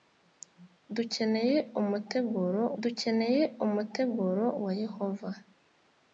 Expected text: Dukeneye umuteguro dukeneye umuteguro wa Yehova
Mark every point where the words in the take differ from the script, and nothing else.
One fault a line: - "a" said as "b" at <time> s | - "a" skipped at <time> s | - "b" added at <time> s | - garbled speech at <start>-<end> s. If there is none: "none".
none